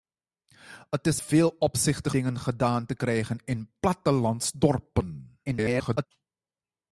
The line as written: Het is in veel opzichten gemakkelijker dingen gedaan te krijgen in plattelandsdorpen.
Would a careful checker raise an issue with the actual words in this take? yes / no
yes